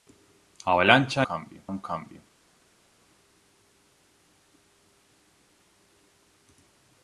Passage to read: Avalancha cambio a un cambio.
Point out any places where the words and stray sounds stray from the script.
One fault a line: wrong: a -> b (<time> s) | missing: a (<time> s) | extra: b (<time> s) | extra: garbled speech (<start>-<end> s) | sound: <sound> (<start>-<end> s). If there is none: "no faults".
no faults